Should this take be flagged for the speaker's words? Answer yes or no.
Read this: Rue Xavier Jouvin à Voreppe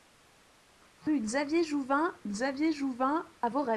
yes